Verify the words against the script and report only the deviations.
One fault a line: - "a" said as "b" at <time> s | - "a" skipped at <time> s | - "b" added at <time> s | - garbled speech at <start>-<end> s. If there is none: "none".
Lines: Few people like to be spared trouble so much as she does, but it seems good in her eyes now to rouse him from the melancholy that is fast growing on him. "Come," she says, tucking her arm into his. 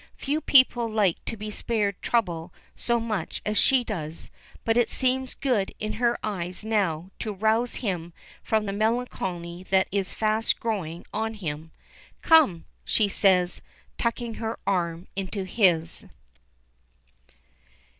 none